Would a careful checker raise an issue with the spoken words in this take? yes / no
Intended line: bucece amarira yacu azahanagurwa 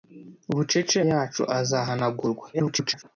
yes